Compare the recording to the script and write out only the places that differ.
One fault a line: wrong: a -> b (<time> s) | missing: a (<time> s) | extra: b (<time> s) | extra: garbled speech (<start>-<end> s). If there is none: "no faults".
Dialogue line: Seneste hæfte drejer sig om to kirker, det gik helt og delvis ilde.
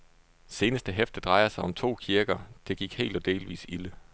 no faults